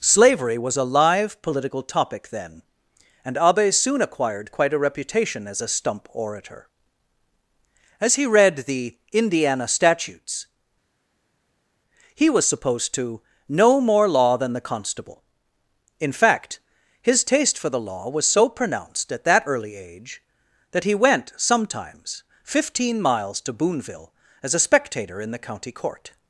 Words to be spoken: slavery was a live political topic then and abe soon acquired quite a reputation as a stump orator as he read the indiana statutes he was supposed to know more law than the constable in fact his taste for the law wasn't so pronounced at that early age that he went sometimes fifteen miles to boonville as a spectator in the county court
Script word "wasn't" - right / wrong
wrong